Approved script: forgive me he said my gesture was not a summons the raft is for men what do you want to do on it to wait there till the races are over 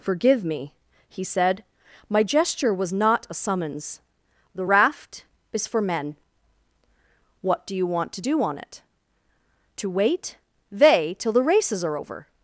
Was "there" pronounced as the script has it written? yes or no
no